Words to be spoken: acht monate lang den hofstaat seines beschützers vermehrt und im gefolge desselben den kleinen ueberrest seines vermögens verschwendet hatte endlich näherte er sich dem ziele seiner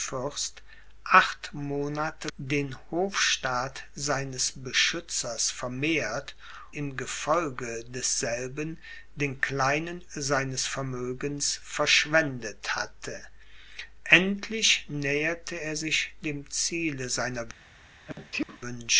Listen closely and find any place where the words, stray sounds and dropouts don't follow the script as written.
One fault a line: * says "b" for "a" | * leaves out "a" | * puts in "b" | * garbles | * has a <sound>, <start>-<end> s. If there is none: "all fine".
* leaves out "lang"
* leaves out "und"
* leaves out "ueberrest"
* has a sneeze, 18.1-18.6 s